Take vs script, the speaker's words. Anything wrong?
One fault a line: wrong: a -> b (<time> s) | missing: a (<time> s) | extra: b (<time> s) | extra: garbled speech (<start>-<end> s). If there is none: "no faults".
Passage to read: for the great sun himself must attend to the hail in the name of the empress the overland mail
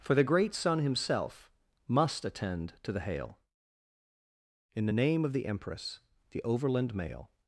no faults